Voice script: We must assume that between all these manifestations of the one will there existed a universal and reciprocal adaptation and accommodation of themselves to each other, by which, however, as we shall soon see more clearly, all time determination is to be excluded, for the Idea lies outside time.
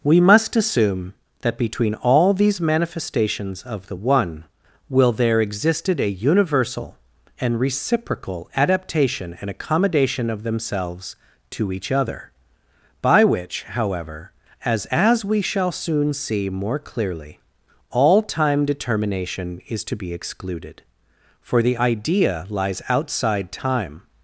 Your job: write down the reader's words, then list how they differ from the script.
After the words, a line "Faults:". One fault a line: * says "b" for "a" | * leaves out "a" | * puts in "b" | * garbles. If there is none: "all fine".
We must assume that between all these manifestations of the one will there existed a universal and reciprocal adaptation and accommodation of themselves to each other, by which, however, as as we shall soon see more clearly, all time determination is to be excluded, for the Idea lies outside time.
Faults:
* puts in "as"